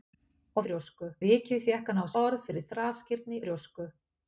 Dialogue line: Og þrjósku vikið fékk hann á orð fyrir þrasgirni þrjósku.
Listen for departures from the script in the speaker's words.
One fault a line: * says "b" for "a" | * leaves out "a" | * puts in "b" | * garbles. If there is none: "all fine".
all fine